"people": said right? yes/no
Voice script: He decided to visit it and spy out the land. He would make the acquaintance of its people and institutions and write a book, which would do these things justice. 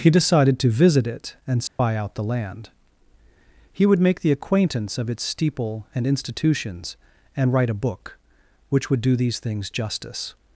no